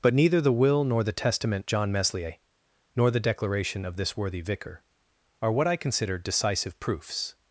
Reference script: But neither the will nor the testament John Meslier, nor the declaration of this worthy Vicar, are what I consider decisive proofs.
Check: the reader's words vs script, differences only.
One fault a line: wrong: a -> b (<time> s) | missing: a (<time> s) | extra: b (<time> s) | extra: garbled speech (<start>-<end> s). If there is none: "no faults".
no faults